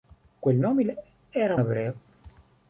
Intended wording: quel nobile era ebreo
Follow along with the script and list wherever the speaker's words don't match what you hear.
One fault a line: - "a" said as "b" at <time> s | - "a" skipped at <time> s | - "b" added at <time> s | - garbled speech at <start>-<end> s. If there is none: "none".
none